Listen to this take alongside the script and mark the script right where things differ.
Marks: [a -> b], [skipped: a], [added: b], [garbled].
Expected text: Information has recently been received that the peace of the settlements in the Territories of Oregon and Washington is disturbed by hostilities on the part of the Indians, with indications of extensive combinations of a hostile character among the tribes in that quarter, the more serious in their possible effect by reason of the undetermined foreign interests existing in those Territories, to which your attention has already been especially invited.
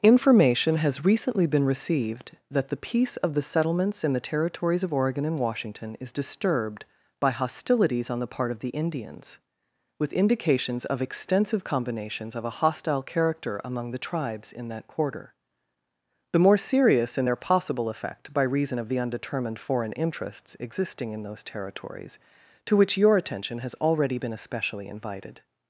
Information has recently been received that the peace of the settlements in the Territories of Oregon and Washington is disturbed by hostilities on the part of the Indians, with indications of extensive combinations of a hostile character among the tribes in that quarter, the more serious in their possible effect by reason of the undetermined foreign interests existing in those Territories, to which your attention has already been especially invited.